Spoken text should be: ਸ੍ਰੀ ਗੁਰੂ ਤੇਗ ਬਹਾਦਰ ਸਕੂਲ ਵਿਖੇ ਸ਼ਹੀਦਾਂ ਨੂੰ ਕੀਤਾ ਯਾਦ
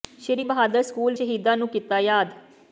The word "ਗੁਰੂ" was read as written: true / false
false